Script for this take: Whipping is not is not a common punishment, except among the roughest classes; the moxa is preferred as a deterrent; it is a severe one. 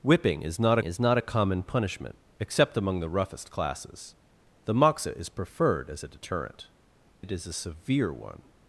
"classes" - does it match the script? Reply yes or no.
yes